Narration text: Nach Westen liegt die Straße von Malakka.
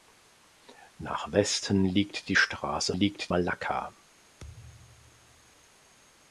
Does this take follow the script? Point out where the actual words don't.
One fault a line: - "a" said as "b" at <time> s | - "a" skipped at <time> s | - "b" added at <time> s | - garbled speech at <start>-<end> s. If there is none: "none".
- "von" said as "liegt" at 2.9 s